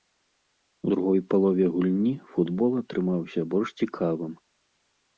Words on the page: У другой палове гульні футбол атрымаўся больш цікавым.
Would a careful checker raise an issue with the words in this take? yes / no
no